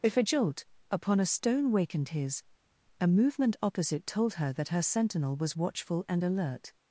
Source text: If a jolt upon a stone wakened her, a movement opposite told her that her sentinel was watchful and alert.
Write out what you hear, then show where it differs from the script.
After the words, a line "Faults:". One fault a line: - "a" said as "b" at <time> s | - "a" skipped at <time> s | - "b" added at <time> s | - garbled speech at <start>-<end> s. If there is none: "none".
If a jolt upon a stone wakened his, a movement opposite told her that her sentinel was watchful and alert.
Faults:
- "her" said as "his" at 2.1 s